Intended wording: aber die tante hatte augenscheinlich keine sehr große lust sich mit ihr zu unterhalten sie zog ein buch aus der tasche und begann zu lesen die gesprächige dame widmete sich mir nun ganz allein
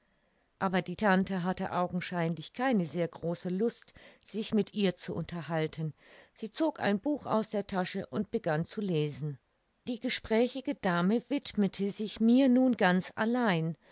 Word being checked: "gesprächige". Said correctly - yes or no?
yes